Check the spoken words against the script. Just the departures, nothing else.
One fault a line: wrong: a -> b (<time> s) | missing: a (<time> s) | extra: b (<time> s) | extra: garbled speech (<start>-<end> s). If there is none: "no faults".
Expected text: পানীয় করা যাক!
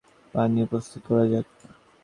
extra: প্রস্তুত (0.7 s)